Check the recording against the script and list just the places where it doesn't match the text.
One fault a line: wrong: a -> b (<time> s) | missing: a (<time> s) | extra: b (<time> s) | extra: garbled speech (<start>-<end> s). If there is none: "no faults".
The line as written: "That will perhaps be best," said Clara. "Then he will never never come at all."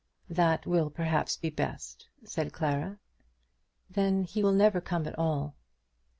missing: never (4.8 s)